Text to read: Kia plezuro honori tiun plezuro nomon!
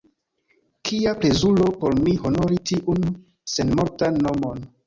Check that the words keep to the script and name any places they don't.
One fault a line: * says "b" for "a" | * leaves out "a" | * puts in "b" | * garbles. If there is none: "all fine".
* puts in "por mi"
* says "senmortan" for "plezuro"